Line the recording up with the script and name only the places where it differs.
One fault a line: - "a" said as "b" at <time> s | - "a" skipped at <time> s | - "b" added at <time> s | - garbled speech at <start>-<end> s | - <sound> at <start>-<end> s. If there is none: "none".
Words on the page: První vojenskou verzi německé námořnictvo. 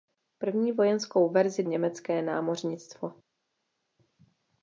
none